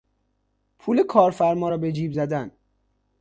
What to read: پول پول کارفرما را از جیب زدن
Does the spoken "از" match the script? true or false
false